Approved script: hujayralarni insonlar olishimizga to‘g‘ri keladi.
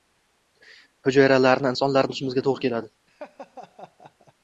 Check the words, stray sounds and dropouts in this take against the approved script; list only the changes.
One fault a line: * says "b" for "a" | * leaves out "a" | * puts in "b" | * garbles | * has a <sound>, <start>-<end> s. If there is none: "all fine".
* has a laugh, 3.1-4.3 s